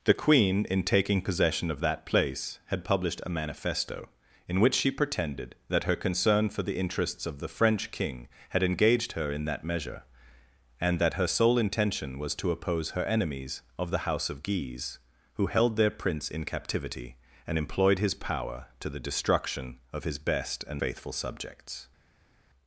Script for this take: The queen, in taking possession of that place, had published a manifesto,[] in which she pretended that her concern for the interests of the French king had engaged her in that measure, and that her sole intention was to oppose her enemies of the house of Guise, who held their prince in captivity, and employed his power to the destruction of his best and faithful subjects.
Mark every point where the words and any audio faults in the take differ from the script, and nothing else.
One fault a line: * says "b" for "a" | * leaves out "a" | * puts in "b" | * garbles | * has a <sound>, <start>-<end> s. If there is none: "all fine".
all fine